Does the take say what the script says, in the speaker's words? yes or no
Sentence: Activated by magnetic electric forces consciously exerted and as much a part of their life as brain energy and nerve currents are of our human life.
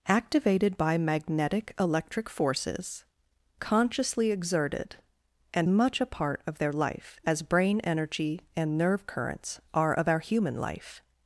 no